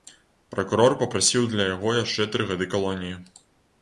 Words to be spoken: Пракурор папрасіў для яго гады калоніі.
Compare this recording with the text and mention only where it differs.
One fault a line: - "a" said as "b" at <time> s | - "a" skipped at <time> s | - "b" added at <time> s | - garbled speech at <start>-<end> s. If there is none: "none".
- "яшчэ тры" added at 2.0 s